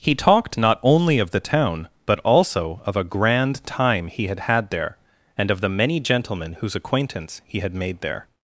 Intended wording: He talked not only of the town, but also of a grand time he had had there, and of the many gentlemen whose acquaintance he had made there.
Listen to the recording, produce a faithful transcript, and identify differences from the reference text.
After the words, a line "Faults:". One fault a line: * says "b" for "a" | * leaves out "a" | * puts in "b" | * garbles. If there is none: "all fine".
He talked not only of the town, but also of a grand time he had had there, and of the many gentlemen whose acquaintance he had made there.
Faults:
all fine